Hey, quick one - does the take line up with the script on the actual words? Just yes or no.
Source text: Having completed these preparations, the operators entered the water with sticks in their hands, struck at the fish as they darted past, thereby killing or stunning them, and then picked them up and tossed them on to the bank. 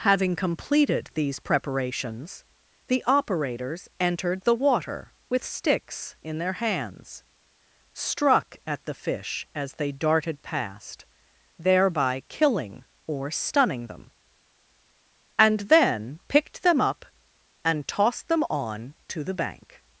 yes